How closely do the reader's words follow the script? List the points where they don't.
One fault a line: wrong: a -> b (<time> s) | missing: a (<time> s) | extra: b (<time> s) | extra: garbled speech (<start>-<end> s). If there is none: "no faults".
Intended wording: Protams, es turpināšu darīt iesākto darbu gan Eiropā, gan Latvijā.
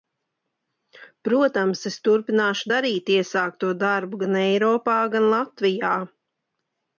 no faults